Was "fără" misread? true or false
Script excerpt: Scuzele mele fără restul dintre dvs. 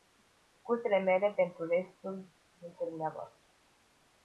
true